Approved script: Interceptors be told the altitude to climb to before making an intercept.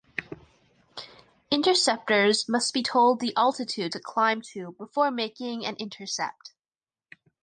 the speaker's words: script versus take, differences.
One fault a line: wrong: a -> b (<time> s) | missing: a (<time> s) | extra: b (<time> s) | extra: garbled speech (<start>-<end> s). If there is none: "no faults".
extra: must (2.5 s)